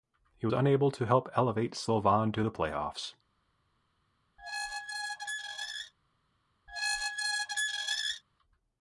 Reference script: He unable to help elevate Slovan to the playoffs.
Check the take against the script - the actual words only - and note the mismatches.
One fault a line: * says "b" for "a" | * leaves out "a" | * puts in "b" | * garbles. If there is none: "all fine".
all fine